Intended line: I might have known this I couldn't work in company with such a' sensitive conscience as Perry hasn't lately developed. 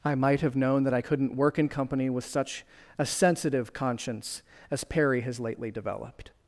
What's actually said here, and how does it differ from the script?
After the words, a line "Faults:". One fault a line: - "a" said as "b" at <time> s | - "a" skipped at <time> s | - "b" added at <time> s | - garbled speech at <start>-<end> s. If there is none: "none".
I might have known that I couldn't work in company with such a' sensitive conscience as Perry has lately developed.
Faults:
- "this" said as "that" at 0.8 s
- "hasn't" said as "has" at 5.2 s